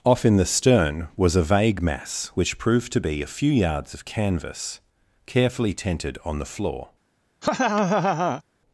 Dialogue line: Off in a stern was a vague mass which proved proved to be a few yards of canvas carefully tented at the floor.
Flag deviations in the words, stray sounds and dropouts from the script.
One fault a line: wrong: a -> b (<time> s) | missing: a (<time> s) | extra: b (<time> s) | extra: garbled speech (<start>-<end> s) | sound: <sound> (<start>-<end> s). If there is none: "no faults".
wrong: a -> the (0.3 s)
missing: proved (2.9 s)
wrong: at -> on (6.2 s)
sound: laugh (7.4-8.4 s)